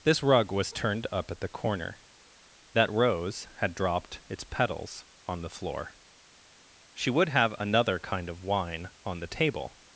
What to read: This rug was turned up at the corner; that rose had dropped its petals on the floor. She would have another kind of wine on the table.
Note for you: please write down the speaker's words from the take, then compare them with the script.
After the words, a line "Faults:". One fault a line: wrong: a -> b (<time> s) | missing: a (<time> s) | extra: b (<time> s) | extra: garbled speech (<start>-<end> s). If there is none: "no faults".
This rug was turned up at the corner; that rose had dropped its petals on the floor. She would have another kind of wine on the table.
Faults:
no faults